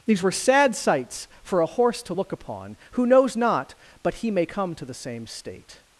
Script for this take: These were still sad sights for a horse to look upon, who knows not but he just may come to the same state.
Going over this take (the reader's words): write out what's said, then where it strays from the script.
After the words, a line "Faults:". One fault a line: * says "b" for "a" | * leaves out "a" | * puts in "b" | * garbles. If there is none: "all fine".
These were sad sights for a horse to look upon, who knows not but he may come to the same state.
Faults:
* leaves out "still"
* leaves out "just"